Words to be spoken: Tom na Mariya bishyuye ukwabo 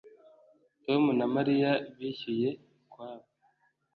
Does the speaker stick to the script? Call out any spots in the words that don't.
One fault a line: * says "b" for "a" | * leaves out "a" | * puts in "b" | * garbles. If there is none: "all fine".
all fine